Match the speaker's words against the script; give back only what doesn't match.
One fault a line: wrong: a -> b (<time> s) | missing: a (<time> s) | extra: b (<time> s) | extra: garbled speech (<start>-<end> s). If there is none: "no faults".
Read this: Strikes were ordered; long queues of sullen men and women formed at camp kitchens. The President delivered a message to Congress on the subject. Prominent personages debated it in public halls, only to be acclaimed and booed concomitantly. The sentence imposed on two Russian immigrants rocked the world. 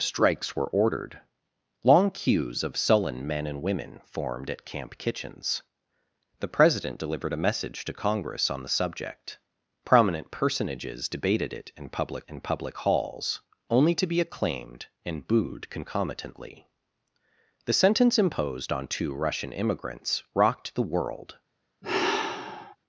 extra: in public (12.3 s)